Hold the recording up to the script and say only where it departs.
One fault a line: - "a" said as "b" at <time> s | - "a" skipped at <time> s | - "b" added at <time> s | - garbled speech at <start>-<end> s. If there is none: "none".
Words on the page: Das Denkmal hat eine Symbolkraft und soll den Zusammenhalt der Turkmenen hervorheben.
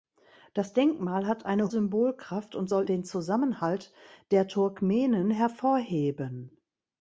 none